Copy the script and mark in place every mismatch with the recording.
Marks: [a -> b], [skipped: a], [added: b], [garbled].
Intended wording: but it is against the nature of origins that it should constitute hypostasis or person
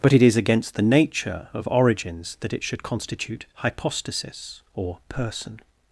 but it is against the nature of origins that it should constitute hypostasis or person